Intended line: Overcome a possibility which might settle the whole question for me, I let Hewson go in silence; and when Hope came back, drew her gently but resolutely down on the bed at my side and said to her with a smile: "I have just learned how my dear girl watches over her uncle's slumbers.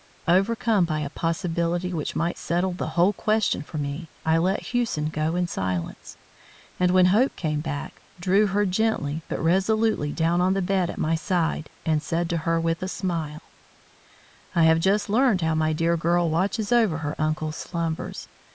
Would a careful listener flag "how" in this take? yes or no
no